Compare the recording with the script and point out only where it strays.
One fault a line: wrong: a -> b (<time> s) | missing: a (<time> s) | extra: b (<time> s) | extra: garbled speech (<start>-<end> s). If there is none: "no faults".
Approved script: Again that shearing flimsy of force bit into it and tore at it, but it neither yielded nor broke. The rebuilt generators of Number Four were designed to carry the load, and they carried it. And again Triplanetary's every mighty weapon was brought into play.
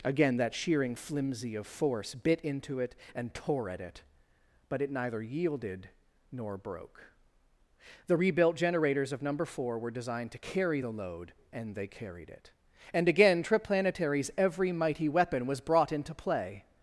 no faults